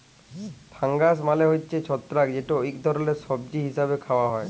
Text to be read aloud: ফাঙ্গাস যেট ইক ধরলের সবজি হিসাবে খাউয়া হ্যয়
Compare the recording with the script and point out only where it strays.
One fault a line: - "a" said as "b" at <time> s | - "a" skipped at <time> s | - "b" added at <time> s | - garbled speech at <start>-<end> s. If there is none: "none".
- "মালে হছে ছত্রাক" added at 1.3 s